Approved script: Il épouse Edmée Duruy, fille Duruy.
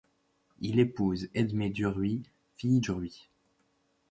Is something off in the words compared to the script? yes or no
no